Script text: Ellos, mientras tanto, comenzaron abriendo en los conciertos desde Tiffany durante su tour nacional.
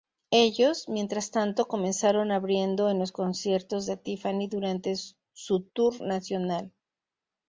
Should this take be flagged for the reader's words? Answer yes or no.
yes